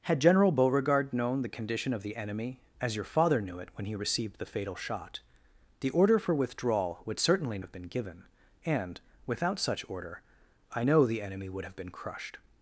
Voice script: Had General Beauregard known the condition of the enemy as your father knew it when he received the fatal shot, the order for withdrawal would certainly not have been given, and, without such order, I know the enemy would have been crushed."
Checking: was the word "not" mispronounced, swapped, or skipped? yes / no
yes